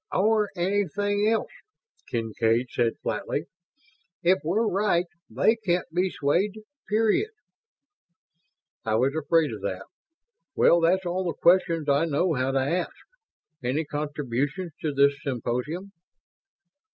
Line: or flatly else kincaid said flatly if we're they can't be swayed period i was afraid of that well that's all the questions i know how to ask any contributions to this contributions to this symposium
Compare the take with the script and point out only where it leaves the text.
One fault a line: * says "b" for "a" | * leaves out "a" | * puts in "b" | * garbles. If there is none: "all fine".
* says "anything" for "flatly"
* puts in "right"
* leaves out "contributions to this"